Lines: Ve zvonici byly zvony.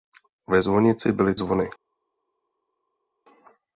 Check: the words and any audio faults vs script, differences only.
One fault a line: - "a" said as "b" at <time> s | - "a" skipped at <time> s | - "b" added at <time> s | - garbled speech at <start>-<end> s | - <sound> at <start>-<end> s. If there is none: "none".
none